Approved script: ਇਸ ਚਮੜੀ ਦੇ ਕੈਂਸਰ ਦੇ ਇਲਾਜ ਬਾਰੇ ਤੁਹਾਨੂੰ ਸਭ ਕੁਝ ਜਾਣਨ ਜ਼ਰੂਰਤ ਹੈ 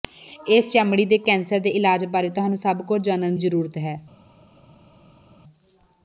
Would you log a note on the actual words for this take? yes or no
no